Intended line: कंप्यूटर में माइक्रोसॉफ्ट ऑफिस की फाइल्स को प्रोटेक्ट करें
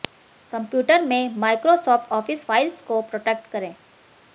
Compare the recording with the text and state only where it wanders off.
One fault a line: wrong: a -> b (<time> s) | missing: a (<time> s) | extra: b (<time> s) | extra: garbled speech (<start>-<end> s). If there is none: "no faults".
missing: की (2.4 s)